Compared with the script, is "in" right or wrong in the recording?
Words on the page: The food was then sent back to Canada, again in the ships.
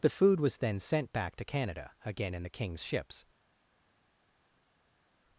right